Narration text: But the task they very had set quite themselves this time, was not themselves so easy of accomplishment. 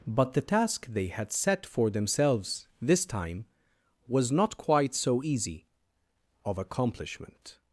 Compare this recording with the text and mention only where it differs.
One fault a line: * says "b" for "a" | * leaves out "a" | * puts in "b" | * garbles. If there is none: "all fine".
* leaves out "very"
* says "for" for "quite"
* says "quite" for "themselves"